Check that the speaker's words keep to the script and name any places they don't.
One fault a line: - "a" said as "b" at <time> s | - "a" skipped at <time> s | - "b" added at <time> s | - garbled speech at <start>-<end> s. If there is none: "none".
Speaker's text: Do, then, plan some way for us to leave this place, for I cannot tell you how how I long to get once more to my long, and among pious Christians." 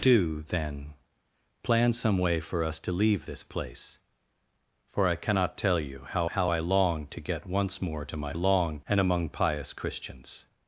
none